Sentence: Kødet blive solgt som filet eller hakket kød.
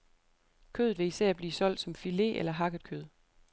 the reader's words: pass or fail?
fail